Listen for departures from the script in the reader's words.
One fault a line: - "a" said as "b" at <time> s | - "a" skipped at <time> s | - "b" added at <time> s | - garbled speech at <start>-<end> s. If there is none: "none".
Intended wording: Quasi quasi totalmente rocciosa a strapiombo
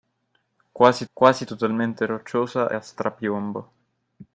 none